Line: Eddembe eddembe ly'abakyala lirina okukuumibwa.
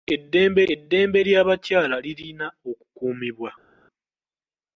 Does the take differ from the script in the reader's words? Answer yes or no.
no